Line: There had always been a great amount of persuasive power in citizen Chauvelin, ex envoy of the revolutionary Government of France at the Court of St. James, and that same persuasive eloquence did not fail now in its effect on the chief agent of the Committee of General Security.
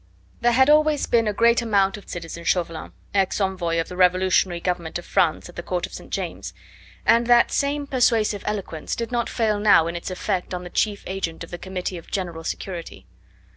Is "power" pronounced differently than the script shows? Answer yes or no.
yes